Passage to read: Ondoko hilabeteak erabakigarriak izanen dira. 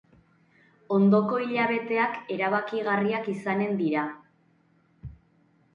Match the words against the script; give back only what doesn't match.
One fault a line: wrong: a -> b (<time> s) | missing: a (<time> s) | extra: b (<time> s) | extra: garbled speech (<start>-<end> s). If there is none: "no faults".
no faults